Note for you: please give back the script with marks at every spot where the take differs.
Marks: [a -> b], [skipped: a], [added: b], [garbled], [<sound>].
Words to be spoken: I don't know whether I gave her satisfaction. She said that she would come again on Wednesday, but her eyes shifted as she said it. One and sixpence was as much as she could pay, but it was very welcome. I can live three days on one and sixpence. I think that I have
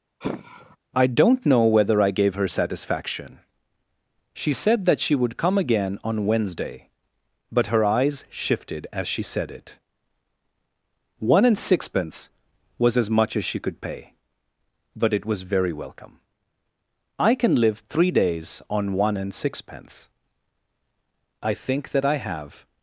[sigh] I don't know whether I gave her satisfaction. She said that she would come again on Wednesday, but her eyes shifted as she said it. One and sixpence was as much as she could pay, but it was very welcome. I can live three days on one and sixpence. I think that I have